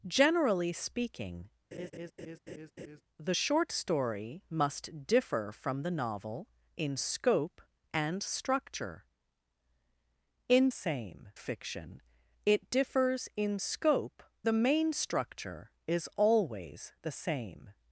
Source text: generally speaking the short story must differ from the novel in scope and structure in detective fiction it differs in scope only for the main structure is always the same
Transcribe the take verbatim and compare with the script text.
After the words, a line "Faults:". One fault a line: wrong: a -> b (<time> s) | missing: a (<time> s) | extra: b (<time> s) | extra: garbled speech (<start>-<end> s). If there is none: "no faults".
generally speaking the short story must differ from the novel in scope and structure in same fiction it differs in scope the main structure is always the same
Faults:
wrong: detective -> same (10.7 s)
missing: only for (14.2 s)